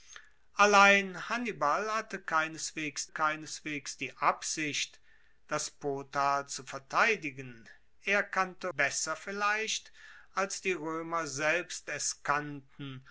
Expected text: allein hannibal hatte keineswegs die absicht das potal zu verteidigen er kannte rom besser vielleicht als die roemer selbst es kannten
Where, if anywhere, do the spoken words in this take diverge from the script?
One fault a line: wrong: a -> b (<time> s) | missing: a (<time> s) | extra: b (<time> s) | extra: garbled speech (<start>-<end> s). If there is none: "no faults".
extra: keineswegs (3.1 s)
missing: rom (8.7 s)